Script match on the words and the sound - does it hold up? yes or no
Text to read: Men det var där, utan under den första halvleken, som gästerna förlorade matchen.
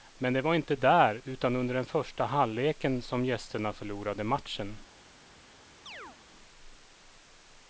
no